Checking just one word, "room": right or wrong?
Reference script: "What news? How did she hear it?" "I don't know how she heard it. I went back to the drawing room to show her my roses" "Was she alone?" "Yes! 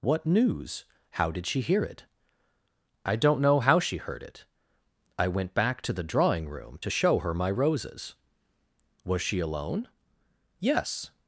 right